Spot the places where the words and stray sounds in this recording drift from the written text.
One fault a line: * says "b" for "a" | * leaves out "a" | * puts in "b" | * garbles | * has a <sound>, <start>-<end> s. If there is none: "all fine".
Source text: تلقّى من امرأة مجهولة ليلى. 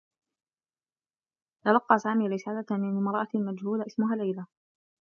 * puts in "سامي رسالة"
* puts in "اسمها"